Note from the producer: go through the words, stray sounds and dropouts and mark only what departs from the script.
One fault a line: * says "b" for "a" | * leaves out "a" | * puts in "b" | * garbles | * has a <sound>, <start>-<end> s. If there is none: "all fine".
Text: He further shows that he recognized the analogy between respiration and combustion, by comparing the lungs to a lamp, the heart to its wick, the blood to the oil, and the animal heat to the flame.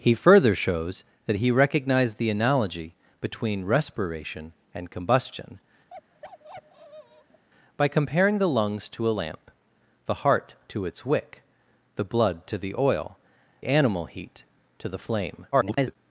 * has a bark, 5.9-7.4 s
* leaves out "and the"
* garbles